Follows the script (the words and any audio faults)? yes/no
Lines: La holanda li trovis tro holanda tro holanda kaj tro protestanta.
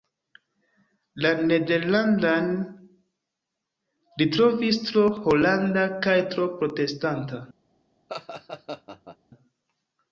no